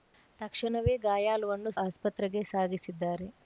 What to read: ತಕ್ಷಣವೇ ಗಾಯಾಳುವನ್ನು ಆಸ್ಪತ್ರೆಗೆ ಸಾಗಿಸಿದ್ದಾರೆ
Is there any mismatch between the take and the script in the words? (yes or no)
no